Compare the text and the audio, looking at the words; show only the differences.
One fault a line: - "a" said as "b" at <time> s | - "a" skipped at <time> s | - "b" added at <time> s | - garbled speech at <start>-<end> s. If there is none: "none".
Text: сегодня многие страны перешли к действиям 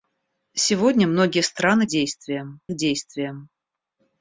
- "перешли" said as "действиям" at 1.9 s